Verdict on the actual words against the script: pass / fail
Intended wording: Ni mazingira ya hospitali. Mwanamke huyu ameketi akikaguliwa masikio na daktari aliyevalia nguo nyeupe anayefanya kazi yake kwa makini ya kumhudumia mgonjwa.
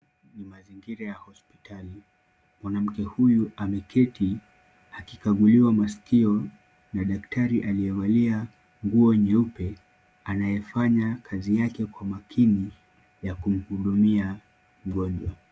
pass